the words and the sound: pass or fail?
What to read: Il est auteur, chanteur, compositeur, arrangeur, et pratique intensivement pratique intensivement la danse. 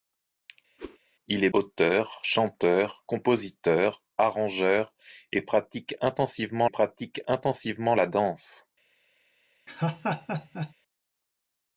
fail